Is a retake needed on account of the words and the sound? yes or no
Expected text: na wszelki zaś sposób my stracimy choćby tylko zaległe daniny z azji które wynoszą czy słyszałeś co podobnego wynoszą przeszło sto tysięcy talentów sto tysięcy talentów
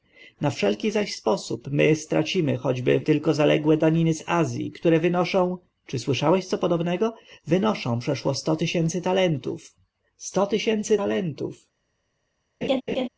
yes